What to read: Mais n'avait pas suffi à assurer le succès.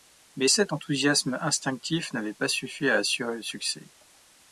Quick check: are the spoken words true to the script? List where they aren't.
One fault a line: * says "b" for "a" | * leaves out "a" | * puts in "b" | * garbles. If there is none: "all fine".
* puts in "cet enthousiasme instinctif"